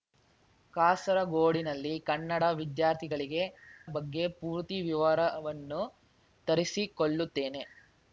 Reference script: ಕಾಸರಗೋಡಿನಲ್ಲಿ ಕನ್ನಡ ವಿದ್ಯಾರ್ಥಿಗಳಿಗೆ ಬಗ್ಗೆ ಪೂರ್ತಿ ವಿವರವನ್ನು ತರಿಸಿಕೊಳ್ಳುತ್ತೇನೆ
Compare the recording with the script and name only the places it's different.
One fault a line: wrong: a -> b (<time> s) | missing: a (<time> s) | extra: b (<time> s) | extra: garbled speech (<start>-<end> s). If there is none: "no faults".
no faults